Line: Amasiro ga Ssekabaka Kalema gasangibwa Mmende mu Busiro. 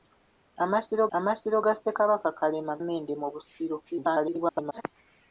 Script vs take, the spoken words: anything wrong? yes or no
yes